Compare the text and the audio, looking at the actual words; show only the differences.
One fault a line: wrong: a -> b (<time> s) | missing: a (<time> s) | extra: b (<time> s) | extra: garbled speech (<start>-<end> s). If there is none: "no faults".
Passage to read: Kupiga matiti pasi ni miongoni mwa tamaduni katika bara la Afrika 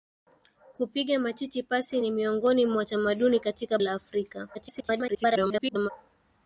missing: bara (3.8 s)
extra: garbled speech (4.5-5.9 s)